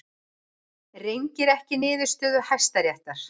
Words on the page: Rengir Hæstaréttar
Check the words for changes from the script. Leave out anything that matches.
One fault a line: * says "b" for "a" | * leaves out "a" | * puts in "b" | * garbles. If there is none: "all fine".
* puts in "ekki niðurstöðu"